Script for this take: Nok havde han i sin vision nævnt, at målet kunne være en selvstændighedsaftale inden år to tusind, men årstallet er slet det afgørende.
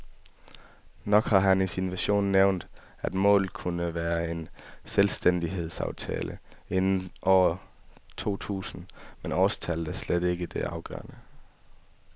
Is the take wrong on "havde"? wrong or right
wrong